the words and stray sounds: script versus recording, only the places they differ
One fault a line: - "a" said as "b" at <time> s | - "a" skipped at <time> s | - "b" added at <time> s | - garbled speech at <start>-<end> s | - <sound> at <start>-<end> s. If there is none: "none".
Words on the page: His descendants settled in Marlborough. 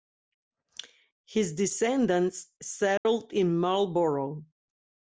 - dropout at 3.0-3.1 s